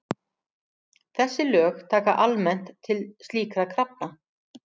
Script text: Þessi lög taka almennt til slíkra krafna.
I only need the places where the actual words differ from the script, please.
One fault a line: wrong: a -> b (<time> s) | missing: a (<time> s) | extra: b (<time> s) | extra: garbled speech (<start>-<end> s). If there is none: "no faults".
no faults